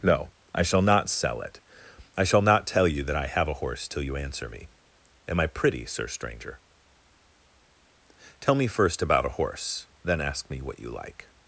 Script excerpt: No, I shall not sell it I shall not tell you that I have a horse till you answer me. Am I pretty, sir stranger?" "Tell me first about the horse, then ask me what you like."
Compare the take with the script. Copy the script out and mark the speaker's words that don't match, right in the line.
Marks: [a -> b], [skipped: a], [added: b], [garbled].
No, I shall not sell it I shall not tell you that I have a horse till you answer me. Am I pretty, sir stranger?" "Tell me first about [the -> a] horse, then ask me what you like."